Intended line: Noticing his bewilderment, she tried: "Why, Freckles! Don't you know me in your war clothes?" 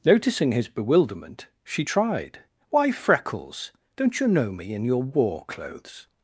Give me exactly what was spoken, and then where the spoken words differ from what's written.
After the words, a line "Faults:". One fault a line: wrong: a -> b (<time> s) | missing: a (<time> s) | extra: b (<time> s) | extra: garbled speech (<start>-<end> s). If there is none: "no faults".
Noticing his bewilderment, she tried: "Why, Freckles! Don't you know me in your war clothes?"
Faults:
no faults